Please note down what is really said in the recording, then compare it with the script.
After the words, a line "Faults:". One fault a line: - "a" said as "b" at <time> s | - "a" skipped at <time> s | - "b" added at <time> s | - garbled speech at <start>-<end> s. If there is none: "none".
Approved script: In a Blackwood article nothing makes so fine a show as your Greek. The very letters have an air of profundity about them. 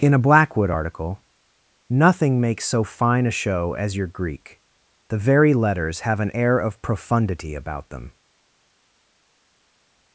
In a Blackwood article nothing makes so fine a show as your Greek. The very letters have an air of profundity about them.
Faults:
none